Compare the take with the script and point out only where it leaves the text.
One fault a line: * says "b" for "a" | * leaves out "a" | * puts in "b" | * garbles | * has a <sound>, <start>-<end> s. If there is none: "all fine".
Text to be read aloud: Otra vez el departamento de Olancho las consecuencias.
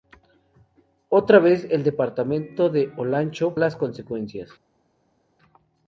all fine